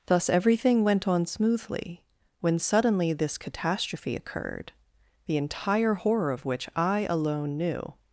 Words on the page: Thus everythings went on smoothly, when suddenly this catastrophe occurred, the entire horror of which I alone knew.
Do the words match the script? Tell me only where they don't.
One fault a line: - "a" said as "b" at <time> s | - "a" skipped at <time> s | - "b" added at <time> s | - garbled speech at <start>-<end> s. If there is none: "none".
- "everythings" said as "everything" at 0.3 s